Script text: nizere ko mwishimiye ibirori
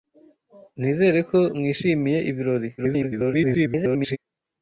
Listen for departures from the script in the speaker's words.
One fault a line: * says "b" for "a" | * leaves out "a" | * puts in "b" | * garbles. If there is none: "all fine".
* garbles